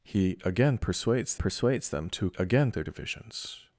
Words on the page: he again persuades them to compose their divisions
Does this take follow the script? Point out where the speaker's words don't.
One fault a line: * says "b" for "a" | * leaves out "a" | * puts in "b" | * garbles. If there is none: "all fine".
* puts in "persuades"
* says "again" for "compose"